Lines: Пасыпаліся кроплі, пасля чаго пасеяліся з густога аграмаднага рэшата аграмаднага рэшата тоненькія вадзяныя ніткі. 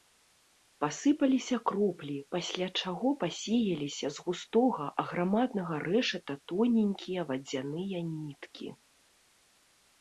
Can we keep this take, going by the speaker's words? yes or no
no